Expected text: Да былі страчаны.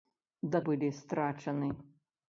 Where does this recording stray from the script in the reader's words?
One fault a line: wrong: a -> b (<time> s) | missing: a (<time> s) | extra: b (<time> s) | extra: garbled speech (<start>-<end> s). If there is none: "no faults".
no faults